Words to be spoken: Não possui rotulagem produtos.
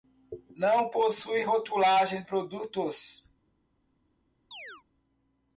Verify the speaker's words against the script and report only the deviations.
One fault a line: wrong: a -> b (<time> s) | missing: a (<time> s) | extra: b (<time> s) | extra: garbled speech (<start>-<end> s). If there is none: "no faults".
no faults